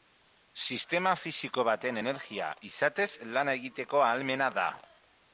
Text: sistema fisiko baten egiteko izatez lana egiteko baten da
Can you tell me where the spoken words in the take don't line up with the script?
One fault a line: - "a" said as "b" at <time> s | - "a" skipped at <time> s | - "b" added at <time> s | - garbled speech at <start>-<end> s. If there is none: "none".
- "egiteko" said as "energia" at 2.0 s
- "baten" said as "ahalmena" at 4.1 s